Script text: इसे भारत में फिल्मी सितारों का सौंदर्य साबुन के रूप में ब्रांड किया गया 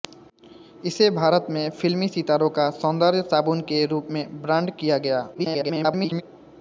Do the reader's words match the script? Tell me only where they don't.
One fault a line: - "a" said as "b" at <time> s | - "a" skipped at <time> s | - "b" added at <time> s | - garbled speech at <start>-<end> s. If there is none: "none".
- garbled speech at 5.3-6.2 s